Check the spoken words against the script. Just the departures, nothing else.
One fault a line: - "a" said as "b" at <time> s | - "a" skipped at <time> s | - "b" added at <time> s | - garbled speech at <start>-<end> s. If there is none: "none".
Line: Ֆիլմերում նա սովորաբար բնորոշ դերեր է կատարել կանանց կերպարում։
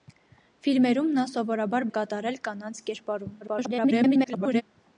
- "բնորոշ դերեր" skipped at 1.9 s
- garbled speech at 3.4-4.6 s